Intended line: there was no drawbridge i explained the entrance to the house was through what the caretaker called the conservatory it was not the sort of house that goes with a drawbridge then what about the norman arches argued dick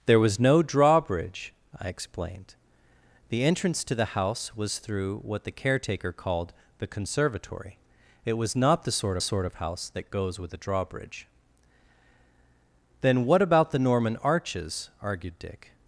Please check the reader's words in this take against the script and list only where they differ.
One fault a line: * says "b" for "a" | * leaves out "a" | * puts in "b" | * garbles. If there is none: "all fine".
* puts in "sort"